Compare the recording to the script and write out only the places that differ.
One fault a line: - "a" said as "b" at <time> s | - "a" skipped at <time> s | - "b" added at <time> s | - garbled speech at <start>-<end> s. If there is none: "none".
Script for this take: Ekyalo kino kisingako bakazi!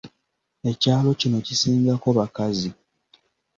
none